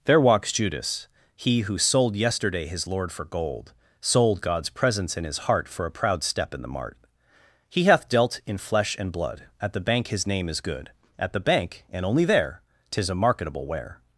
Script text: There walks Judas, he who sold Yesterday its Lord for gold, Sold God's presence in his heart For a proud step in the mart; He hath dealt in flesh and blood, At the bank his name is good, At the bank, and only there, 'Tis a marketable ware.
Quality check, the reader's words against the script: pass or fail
fail